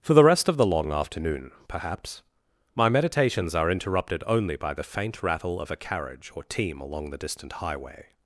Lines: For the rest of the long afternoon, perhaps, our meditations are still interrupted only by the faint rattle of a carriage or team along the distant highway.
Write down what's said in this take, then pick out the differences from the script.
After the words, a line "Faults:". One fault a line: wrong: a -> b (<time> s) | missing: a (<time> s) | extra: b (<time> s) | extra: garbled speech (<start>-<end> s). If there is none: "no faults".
For the rest of the long afternoon, perhaps, my meditations are interrupted only by the faint rattle of a carriage or team along the distant highway.
Faults:
wrong: our -> my (2.8 s)
missing: still (3.7 s)